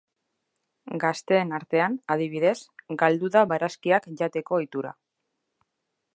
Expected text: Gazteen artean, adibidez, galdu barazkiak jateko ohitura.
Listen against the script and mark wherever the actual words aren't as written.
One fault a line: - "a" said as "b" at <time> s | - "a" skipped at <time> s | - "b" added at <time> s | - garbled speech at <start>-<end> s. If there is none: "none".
- "da" added at 3.3 s